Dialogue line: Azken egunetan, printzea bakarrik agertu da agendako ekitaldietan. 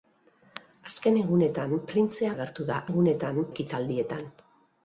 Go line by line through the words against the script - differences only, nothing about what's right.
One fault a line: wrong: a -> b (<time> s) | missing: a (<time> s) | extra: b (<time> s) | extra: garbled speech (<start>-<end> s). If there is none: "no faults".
missing: bakarrik (2.3 s)
wrong: agendako -> egunetan (2.9 s)